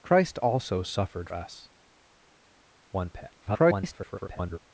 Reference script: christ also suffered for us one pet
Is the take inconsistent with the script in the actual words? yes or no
yes